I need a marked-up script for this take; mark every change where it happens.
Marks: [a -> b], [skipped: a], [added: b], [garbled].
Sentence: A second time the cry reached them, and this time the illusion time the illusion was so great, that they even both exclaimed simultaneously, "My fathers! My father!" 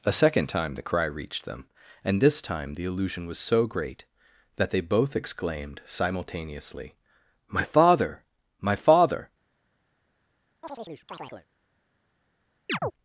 A second time the cry reached them, and this time the illusion [skipped: time the illusion] was so great, that they [skipped: even] both exclaimed simultaneously, "My [fathers! -> father] My father!"